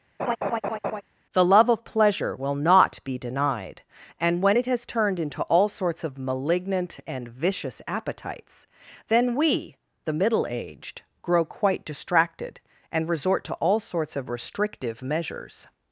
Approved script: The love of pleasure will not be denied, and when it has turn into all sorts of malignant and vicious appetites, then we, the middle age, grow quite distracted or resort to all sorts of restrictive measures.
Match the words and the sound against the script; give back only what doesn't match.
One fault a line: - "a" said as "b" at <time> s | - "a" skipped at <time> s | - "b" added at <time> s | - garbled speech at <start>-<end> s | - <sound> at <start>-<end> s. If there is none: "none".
- laugh at 0.2-1.0 s
- "turn" said as "turned" at 4.8 s
- "age" said as "aged" at 10.5 s
- "or" said as "and" at 12.9 s